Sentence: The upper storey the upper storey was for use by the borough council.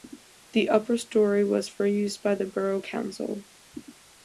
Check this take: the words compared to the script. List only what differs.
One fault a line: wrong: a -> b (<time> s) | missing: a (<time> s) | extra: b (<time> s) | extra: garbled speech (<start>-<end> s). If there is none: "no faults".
missing: the upper storey (1.4 s)